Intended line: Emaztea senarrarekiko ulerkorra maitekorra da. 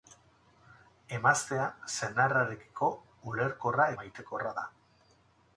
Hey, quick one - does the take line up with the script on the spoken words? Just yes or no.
yes